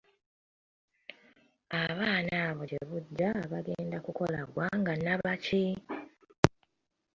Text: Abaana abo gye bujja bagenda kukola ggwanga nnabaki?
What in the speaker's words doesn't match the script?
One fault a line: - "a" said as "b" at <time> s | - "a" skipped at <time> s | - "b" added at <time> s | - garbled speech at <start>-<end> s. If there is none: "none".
none